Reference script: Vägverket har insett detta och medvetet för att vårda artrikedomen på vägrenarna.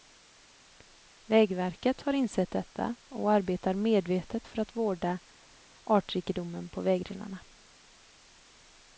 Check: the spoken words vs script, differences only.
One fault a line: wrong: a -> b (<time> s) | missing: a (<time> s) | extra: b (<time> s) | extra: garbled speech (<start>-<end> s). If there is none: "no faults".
extra: arbetar (3.3 s)